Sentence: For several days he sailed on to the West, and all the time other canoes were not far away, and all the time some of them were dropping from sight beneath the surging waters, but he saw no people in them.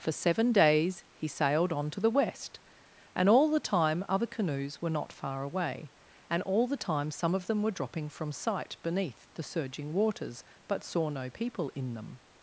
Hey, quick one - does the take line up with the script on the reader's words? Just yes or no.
no